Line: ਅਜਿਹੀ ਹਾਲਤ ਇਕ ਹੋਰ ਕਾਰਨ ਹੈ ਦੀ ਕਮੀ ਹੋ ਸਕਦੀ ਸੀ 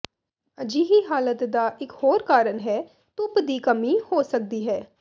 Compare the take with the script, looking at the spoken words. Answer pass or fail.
fail